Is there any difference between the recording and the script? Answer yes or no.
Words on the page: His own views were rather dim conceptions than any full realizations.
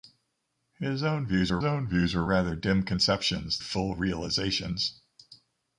yes